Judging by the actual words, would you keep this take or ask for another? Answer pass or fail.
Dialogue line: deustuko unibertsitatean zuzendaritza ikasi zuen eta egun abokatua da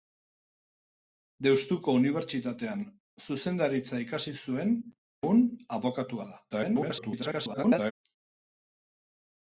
fail